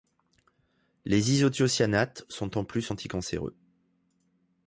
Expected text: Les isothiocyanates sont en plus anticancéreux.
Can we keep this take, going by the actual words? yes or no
yes